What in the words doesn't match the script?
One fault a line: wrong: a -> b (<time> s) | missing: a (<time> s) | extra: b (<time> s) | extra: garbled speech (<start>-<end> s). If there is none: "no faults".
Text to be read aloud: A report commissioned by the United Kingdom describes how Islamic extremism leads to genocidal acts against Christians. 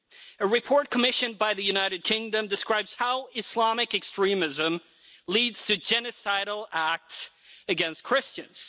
no faults